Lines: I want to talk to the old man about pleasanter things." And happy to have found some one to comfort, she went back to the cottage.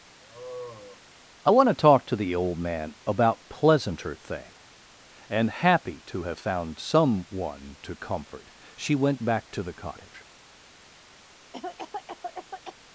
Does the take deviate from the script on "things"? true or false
true